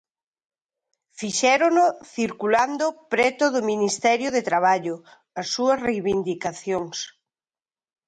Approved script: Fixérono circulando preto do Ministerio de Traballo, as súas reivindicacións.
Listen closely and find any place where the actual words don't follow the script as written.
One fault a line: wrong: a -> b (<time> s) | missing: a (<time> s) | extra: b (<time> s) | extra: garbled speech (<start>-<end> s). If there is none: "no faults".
no faults